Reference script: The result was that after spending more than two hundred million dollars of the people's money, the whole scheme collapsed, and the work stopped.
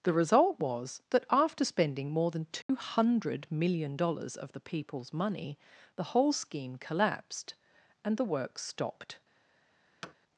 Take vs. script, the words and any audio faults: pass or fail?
fail